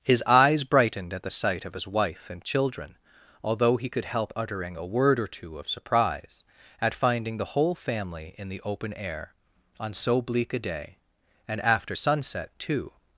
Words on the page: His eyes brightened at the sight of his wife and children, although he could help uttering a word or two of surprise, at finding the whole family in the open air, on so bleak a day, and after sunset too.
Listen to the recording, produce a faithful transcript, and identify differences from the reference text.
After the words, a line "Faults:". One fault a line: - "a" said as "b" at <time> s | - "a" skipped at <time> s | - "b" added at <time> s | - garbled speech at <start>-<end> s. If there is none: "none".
His eyes brightened at the sight of his wife and children, although he could help uttering a word or two of surprise, at finding the whole family in the open air, on so bleak a day, and after sunset too.
Faults:
none